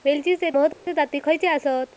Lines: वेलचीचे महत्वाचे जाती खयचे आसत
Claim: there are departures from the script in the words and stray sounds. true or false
true